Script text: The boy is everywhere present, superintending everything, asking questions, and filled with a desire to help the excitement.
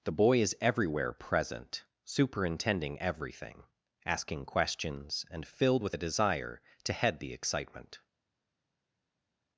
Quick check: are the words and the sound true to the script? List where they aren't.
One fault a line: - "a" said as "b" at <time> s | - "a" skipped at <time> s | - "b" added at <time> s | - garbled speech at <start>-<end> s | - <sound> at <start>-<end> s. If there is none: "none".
- "help" said as "head" at 6.9 s